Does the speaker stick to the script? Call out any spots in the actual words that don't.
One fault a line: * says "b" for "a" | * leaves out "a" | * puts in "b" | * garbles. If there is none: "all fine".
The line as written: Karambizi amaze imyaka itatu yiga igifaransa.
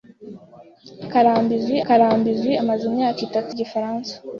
* puts in "karambizi"
* leaves out "yiga"